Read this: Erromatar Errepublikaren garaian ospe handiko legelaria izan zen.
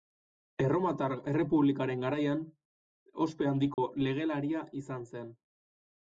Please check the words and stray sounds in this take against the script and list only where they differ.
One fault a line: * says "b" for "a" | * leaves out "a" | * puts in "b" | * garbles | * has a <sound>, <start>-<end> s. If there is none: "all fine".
* has a dropout, 3.7-3.8 s